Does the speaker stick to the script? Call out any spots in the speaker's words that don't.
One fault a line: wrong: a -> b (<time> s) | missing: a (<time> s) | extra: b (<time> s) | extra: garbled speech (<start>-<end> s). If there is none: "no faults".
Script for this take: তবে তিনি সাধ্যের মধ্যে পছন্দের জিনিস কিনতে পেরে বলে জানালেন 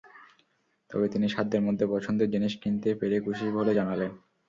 extra: খুশি (3.2 s)